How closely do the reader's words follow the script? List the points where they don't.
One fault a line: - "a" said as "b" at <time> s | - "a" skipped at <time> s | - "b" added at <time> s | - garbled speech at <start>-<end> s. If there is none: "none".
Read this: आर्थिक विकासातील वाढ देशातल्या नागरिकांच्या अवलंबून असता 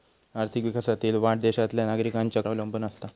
none